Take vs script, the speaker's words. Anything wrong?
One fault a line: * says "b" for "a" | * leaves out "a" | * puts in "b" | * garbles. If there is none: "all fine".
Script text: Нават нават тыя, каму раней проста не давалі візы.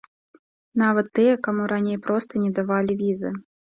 * leaves out "нават"